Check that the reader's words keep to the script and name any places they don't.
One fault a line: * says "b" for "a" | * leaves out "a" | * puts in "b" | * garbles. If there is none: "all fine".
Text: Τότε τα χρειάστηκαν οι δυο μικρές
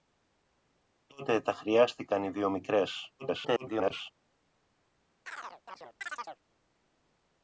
* garbles